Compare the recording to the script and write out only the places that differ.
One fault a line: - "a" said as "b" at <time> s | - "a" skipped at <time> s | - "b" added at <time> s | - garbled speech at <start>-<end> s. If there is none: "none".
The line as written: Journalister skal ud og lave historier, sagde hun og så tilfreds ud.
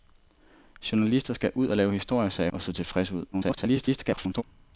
- "hun" skipped at 2.5 s
- garbled speech at 3.3-4.4 s